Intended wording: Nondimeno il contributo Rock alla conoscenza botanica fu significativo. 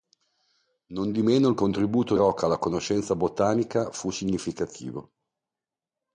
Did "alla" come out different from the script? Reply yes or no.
no